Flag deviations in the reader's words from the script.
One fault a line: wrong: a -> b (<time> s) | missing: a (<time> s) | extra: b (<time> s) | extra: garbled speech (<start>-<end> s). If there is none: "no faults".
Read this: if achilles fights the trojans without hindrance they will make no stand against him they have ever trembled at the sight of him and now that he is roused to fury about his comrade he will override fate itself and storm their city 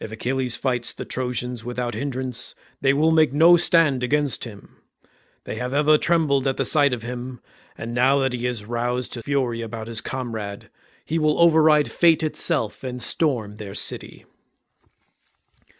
no faults